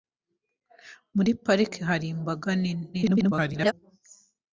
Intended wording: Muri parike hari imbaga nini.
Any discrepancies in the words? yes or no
yes